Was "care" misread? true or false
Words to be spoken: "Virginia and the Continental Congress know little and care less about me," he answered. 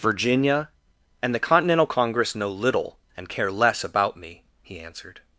false